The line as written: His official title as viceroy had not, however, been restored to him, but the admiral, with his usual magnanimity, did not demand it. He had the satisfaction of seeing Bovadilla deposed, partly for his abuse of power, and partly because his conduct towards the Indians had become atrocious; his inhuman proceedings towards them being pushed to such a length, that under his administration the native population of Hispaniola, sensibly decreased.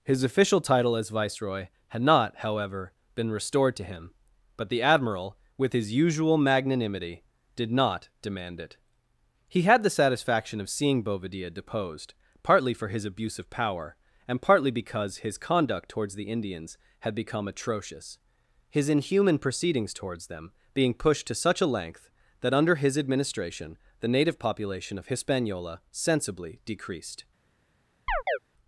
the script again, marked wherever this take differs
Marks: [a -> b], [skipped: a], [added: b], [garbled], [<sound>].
His official title as viceroy had not, however, been restored to him, but the admiral, with his usual magnanimity, did not demand it. He had the satisfaction of seeing Bovadilla deposed, partly for his abuse of power, and partly because his conduct towards the Indians had become atrocious; his inhuman proceedings towards them being pushed to such a length, that under his administration the native population of Hispaniola, sensibly decreased. [chirp]